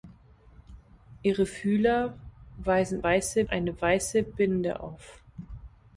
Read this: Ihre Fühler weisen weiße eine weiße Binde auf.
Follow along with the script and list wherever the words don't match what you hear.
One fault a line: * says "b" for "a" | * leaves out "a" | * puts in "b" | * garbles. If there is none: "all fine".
all fine